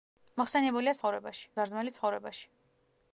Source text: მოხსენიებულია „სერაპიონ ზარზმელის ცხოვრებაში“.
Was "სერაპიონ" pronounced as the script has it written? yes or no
no